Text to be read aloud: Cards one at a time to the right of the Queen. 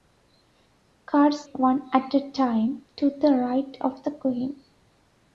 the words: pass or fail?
pass